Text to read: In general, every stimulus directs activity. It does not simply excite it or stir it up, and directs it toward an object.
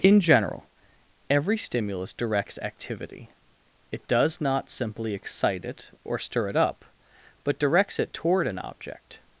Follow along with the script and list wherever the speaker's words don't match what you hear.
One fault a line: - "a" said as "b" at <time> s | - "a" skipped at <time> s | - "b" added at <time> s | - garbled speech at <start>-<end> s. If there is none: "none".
- "and" said as "but" at 7.4 s